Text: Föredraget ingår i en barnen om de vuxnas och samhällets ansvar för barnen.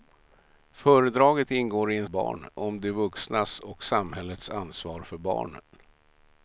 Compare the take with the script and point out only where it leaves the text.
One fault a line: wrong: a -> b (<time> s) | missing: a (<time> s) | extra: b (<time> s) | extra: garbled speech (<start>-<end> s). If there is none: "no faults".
no faults